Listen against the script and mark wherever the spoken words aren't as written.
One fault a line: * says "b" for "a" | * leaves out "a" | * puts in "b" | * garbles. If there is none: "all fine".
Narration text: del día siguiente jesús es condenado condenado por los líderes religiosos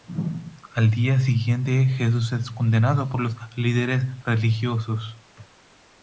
* says "al" for "del"
* leaves out "condenado"